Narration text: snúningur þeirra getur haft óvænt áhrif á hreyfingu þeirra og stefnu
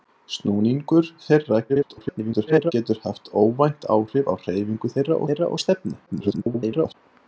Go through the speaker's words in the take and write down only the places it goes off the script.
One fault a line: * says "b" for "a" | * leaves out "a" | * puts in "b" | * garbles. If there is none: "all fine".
* garbles
* puts in "þeirra"
* garbles